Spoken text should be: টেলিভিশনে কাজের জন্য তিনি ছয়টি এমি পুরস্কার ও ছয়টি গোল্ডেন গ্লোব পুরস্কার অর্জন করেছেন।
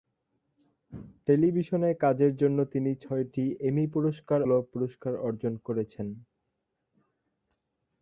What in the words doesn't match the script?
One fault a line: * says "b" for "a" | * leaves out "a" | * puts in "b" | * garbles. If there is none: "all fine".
* leaves out "ও ছয়টি গোল্ডেন"